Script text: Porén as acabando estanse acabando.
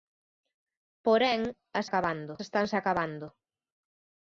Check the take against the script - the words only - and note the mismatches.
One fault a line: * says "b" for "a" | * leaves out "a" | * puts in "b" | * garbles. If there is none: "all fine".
all fine